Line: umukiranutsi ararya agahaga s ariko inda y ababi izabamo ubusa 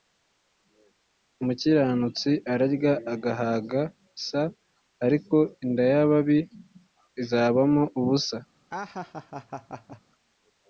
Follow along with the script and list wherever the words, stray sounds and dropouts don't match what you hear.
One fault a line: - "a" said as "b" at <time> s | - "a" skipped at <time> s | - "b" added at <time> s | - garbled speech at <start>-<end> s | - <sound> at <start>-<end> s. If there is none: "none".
- laugh at 8.7-10.0 s